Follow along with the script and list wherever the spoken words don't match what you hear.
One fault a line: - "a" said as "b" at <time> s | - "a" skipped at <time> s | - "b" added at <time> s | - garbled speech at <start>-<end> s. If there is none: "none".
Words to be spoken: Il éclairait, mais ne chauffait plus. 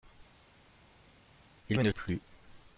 - "éclairait" skipped at 1.8 s
- "chauffait" skipped at 1.9 s